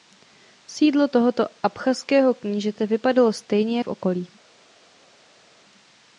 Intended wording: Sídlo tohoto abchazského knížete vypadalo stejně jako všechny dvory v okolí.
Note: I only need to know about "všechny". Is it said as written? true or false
false